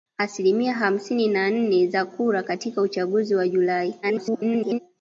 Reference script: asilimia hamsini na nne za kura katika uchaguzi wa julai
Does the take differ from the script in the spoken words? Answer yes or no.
yes